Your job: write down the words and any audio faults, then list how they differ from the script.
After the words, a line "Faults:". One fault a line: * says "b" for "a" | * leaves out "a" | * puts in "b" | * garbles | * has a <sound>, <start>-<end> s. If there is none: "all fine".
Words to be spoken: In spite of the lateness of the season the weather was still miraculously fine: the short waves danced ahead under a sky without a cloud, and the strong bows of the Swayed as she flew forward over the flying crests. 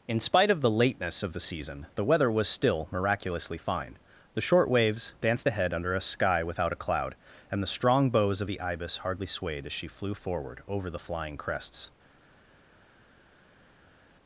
In spite of the lateness of the season the weather was still miraculously fine: the short waves danced ahead under a sky without a cloud, and the strong bows of the Ibis hardly swayed as she flew forward over the flying crests.
Faults:
* puts in "Ibis hardly"